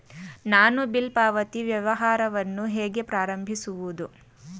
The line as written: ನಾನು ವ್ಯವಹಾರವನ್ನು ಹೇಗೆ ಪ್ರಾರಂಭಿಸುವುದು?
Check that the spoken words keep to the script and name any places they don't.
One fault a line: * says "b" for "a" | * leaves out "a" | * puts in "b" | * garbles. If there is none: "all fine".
* puts in "ಬಿಲ್ ಪಾವತಿ"